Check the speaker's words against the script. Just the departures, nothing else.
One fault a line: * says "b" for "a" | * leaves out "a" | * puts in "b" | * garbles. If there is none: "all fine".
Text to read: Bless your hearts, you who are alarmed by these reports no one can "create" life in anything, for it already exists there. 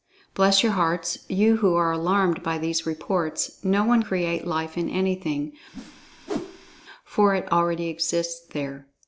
* leaves out "can"